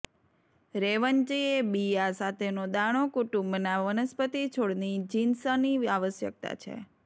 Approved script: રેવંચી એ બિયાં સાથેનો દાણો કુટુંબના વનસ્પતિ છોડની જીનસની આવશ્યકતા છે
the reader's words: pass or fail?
pass